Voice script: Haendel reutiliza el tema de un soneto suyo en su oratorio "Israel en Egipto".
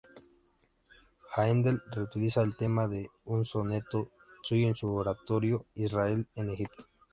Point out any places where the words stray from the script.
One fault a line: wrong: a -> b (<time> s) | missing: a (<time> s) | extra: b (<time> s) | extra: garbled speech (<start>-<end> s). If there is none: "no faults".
no faults